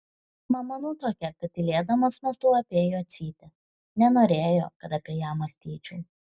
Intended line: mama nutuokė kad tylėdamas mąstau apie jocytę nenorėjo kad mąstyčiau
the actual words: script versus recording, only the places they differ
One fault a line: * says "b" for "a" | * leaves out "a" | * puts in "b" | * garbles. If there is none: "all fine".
* puts in "apie ją"